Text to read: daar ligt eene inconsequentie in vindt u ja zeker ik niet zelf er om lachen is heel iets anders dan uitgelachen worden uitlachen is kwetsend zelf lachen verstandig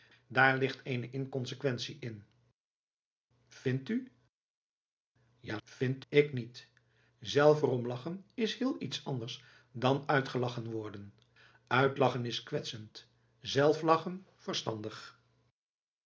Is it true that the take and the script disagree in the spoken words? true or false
true